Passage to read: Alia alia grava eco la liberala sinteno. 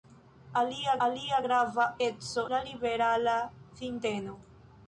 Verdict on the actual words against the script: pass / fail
pass